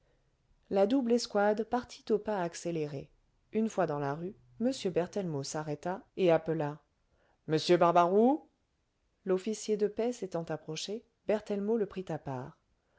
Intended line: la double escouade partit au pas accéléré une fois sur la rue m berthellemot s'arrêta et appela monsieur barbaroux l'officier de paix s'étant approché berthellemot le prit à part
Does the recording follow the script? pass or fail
fail